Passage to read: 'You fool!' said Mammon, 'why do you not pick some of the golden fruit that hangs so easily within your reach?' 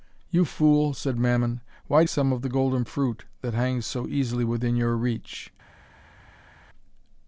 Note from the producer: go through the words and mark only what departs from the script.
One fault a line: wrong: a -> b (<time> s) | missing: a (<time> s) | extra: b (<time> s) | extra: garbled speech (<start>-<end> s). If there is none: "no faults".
missing: you not pick (2.1 s)